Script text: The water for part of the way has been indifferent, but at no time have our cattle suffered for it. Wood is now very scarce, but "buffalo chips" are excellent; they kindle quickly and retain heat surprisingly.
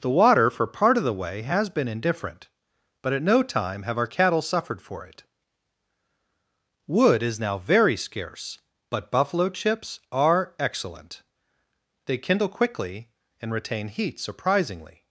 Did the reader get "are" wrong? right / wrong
right